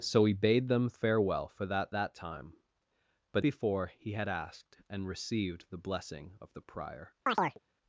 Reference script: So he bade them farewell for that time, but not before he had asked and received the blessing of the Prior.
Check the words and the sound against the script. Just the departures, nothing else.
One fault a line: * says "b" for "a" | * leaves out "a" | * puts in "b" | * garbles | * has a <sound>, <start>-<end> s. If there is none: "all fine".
* puts in "that"
* leaves out "not"
* has a chirp, 7.3-7.6 s